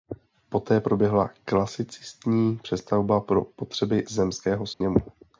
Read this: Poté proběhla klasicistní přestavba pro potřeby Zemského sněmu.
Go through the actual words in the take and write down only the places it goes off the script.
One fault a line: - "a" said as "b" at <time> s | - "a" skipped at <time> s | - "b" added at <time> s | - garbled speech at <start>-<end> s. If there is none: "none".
none